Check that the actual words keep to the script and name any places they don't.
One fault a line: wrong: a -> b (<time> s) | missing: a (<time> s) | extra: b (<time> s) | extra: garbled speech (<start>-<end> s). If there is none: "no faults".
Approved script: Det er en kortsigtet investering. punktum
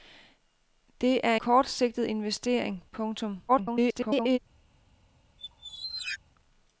missing: en (1.4 s)
extra: garbled speech (3.5-4.4 s)